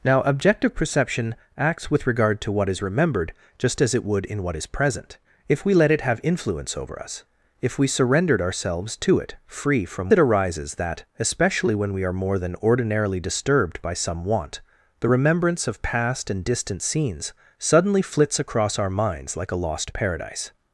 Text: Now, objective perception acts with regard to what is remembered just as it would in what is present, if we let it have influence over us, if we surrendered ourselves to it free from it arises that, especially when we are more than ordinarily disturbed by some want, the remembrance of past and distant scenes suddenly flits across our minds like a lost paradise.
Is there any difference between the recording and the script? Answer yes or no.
no